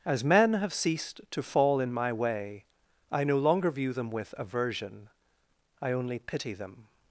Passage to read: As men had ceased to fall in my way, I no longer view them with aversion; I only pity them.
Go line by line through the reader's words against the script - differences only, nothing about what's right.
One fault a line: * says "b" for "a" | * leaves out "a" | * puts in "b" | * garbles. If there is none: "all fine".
* says "have" for "had"